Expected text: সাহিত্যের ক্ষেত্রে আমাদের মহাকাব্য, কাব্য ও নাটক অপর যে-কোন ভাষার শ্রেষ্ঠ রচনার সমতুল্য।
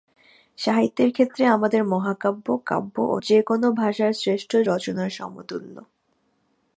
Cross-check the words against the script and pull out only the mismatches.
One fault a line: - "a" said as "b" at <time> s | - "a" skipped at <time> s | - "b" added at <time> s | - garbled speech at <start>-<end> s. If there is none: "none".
- "নাটক অপর" skipped at 3.2 s